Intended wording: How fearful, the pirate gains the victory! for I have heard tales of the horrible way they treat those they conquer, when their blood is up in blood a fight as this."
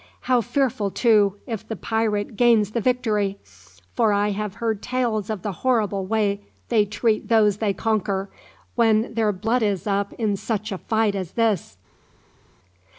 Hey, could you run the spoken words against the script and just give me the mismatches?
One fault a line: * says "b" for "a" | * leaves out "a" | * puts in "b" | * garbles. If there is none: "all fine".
* puts in "too if"
* says "such" for "blood"